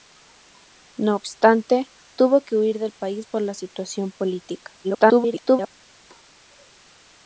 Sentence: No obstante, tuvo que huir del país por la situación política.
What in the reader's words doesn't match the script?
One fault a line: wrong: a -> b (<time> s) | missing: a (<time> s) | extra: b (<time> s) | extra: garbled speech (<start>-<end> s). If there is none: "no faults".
extra: garbled speech (4.8-5.7 s)